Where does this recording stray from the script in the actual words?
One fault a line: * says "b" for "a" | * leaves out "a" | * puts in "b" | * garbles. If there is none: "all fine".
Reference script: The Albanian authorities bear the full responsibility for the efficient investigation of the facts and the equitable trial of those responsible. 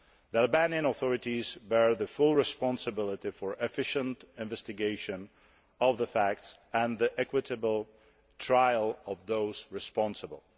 all fine